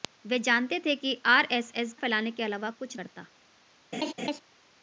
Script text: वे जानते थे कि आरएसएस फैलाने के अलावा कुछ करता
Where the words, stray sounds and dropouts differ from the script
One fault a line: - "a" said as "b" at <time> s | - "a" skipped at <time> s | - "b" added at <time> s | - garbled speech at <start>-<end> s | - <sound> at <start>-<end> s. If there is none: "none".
- laugh at 3.9-4.4 s